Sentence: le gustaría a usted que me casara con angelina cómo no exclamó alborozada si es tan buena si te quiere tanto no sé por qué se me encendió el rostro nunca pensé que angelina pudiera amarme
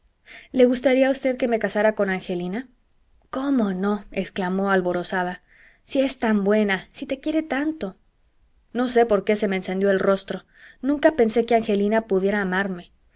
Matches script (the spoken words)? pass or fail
pass